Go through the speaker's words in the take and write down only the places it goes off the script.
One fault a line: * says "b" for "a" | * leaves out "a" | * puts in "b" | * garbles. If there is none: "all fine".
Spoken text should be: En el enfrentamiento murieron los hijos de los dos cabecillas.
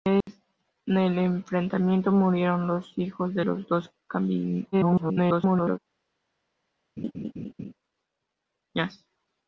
* garbles